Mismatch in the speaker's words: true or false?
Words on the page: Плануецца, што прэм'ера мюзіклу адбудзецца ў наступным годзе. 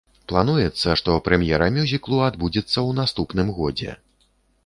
false